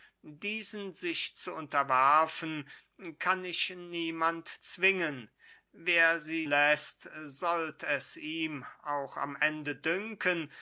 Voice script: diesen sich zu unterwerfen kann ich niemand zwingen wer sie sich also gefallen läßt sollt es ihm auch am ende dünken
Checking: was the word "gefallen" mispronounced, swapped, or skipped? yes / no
yes